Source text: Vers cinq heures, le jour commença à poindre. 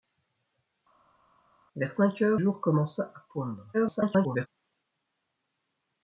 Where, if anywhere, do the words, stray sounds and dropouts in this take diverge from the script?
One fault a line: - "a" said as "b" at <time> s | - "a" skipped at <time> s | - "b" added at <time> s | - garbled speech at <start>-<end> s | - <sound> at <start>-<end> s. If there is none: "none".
- "le" skipped at 2.4 s
- garbled speech at 3.7-4.5 s